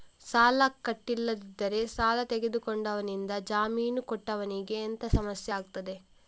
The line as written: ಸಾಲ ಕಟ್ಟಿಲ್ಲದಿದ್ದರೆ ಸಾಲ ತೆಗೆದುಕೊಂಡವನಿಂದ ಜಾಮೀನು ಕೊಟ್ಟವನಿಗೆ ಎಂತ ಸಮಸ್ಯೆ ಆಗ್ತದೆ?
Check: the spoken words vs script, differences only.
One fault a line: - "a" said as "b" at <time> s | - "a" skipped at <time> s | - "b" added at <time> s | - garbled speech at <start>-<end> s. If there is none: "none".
none